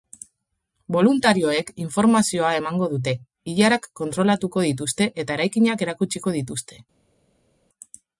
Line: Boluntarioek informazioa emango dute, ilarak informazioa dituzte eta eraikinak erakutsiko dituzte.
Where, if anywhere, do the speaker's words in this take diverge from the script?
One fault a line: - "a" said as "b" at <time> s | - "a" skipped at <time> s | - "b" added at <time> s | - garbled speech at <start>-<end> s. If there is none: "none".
- "informazioa" said as "kontrolatuko" at 4.0 s